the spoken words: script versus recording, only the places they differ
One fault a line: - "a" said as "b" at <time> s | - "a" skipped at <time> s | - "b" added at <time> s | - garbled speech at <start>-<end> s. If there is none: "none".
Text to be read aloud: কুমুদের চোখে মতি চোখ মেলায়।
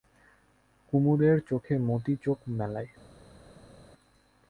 none